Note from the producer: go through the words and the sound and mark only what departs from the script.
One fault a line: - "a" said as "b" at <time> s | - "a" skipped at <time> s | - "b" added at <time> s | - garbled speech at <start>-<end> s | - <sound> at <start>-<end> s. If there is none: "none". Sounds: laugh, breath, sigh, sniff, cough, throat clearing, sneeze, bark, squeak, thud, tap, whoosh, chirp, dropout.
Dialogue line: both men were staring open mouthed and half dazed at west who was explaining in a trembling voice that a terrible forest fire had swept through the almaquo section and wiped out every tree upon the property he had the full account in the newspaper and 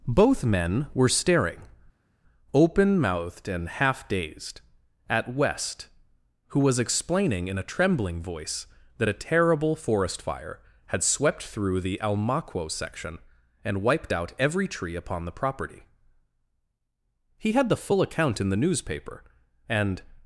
none